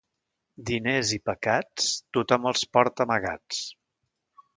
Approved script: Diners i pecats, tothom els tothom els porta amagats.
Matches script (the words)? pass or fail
fail